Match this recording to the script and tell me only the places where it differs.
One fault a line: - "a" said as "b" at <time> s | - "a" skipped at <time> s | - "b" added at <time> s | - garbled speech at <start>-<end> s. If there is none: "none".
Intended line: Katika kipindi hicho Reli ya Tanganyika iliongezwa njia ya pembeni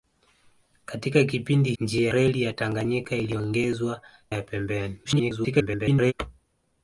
- "hicho" said as "njia" at 1.8 s
- "njia" skipped at 4.0 s
- garbled speech at 5.0-6.1 s